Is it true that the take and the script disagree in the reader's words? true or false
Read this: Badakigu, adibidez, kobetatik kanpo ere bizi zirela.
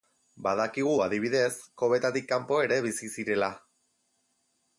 false